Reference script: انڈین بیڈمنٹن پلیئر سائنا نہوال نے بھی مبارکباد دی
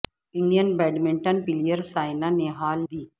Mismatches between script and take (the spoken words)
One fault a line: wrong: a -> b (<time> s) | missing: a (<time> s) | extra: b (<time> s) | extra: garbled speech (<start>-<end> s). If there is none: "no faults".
missing: نے بھی مبارکباد (2.8 s)